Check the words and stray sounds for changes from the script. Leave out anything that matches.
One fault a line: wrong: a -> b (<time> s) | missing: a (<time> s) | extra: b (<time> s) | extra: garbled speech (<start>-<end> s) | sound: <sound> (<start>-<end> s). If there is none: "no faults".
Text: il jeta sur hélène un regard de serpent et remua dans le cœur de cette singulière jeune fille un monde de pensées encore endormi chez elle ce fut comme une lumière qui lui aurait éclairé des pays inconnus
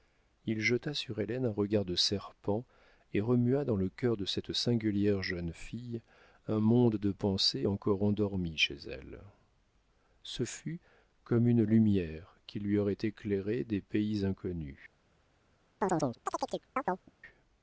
sound: chirp (15.8-17.1 s)